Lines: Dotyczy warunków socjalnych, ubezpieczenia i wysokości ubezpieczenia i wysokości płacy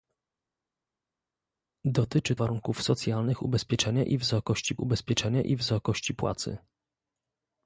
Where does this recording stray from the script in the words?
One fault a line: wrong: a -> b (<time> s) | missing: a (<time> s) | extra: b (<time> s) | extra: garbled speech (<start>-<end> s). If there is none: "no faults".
no faults